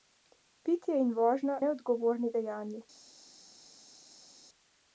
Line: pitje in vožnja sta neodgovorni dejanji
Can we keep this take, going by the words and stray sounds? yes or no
no